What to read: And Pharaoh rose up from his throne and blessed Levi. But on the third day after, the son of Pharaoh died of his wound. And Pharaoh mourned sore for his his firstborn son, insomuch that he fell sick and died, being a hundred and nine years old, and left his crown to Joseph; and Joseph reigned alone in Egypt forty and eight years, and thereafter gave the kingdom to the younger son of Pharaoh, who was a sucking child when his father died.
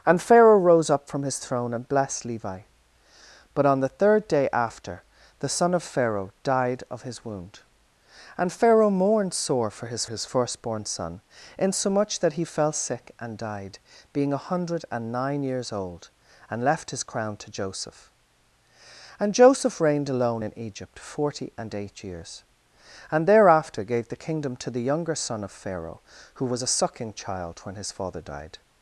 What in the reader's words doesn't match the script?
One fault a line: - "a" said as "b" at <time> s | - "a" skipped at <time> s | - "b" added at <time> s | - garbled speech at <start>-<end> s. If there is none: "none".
none